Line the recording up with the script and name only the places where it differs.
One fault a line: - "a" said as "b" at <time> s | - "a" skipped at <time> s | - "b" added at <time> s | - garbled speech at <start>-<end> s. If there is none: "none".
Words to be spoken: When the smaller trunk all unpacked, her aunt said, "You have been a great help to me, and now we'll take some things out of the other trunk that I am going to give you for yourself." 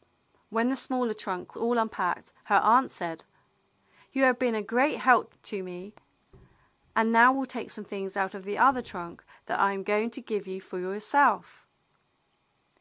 none